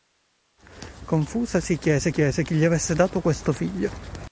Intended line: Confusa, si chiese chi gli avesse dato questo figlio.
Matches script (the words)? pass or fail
fail